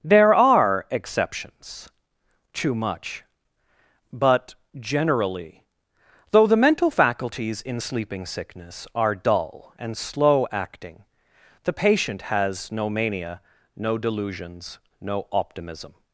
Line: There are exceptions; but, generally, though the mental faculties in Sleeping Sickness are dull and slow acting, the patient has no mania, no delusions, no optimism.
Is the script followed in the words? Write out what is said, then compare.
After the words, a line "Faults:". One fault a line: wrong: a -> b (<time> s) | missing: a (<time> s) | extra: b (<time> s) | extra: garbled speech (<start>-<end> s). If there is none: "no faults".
There are exceptions; too much but, generally, though the mental faculties in Sleeping Sickness are dull and slow acting, the patient has no mania, no delusions, no optimism.
Faults:
extra: too much (2.5 s)